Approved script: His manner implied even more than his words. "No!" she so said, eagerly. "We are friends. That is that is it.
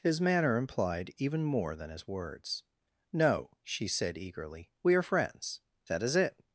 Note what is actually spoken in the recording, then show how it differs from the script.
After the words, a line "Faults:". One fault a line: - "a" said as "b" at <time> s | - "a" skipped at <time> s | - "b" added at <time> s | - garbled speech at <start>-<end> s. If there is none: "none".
His manner implied even more than his words. "No!" she said, eagerly. "We are friends. That is it.
Faults:
- "so" skipped at 3.9 s
- "that is" skipped at 6.2 s